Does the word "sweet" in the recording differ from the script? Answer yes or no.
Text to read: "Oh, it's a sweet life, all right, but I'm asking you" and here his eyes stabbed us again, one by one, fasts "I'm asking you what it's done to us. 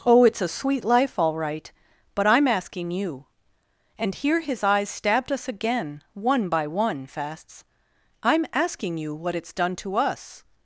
no